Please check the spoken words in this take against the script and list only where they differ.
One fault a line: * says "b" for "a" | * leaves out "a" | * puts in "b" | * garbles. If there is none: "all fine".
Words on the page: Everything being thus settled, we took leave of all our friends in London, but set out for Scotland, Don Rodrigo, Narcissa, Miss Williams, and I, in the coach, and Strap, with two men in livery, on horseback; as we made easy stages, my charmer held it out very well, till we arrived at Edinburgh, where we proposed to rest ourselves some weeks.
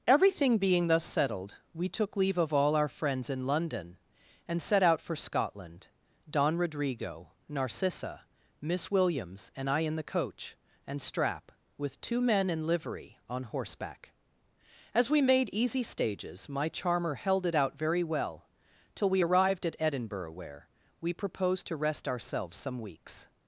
* says "and" for "but"